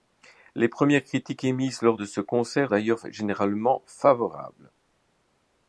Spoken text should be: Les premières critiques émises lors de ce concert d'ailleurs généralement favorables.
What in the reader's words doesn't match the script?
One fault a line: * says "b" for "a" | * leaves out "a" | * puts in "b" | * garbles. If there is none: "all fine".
all fine